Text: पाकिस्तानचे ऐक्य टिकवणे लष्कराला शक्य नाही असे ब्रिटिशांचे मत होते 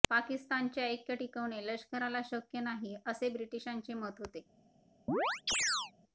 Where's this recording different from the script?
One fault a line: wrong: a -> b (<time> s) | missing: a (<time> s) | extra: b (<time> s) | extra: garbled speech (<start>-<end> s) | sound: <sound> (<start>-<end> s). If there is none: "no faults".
sound: chirp (5.1-5.9 s)